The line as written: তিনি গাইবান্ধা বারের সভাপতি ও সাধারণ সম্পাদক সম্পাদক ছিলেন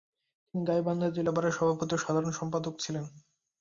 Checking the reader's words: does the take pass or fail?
fail